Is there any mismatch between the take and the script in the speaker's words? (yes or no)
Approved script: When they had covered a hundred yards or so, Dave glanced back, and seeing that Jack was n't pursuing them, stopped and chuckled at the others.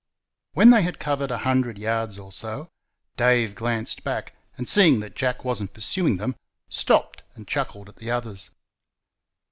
no